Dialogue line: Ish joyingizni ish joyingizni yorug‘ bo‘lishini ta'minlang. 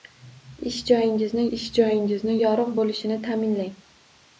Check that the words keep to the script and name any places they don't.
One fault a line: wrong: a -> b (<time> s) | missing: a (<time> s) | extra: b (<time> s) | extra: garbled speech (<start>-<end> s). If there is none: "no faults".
no faults